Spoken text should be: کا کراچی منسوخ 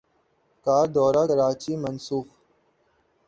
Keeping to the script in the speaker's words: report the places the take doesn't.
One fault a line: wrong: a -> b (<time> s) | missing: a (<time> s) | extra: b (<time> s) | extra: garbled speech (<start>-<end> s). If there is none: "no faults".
extra: دورہ (0.9 s)